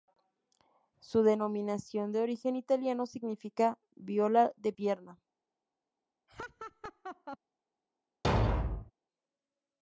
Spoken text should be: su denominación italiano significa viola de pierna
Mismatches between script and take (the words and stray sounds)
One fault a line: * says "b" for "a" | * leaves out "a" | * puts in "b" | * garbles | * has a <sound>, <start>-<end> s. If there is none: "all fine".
* puts in "de origen"
* has a laugh, 6.3-7.4 s
* has a thud, 8.2-8.9 s